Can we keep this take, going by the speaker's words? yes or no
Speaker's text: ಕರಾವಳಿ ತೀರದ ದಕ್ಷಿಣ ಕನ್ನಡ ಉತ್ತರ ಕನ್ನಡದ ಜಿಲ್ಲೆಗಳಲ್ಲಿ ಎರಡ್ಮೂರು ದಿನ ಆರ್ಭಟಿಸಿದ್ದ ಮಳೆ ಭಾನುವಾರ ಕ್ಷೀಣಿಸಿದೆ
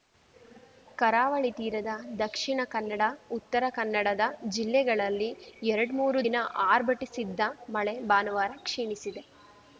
yes